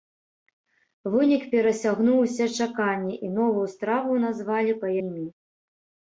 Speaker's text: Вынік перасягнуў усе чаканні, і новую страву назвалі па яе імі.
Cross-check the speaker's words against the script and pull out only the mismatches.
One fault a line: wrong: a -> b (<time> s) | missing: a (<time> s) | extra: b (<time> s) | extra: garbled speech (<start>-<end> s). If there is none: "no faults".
missing: яе (4.9 s)